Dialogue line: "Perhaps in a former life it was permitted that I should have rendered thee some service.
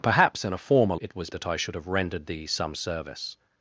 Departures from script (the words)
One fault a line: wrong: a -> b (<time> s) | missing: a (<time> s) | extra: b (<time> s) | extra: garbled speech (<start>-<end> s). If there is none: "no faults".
missing: life (0.9 s)
missing: permitted (1.3 s)